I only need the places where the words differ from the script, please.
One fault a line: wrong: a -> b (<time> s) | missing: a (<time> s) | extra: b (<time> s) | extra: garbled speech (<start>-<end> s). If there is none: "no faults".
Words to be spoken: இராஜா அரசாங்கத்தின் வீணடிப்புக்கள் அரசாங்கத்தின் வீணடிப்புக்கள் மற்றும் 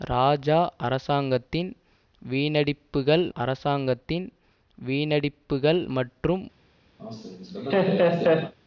no faults